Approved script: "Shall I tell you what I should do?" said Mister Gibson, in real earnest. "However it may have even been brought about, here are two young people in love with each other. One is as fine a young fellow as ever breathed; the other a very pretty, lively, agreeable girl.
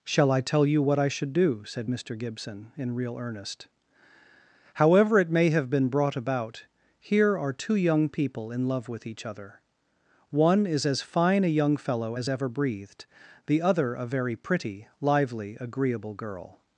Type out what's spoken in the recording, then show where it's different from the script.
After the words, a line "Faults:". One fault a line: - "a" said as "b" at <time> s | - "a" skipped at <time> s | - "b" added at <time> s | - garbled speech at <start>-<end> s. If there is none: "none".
"Shall I tell you what I should do?" said Mister Gibson, in real earnest. "However it may have been brought about, here are two young people in love with each other. One is as fine a young fellow as ever breathed; the other a very pretty, lively, agreeable girl.
Faults:
- "even" skipped at 5.7 s